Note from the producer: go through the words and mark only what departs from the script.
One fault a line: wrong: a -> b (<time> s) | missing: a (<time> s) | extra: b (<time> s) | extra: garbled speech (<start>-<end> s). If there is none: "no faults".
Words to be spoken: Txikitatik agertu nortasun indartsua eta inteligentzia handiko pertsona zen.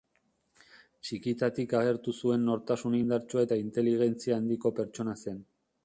extra: zuen (2.2 s)